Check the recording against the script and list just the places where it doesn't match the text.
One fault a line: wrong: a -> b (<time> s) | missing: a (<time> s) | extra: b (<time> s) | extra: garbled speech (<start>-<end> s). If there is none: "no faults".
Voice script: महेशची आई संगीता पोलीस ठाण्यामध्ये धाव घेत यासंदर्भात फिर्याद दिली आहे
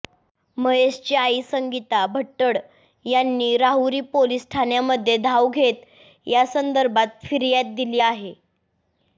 extra: भट्टड यांनी राहुरी (2.1 s)